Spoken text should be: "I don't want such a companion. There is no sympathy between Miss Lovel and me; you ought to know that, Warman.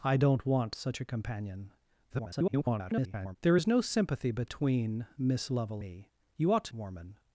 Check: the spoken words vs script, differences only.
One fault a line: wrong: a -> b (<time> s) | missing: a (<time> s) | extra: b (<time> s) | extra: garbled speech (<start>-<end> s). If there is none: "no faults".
extra: garbled speech (2.1-3.4 s)
missing: and (5.8 s)
missing: know that (6.7 s)